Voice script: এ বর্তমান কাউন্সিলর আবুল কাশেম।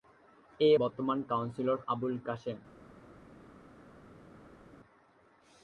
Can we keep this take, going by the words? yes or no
yes